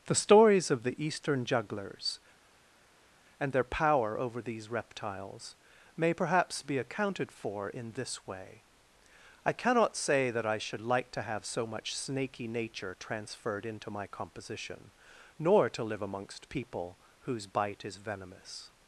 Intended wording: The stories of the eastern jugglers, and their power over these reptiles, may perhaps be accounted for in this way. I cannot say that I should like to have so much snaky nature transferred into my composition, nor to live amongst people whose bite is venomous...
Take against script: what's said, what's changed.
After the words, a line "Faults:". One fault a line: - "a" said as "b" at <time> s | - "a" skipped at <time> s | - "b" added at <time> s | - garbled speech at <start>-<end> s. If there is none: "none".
The stories of the eastern jugglers, and their power over these reptiles, may perhaps be accounted for in this way. I cannot say that I should like to have so much snaky nature transferred into my composition, nor to live amongst people whose bite is venomous...
Faults:
none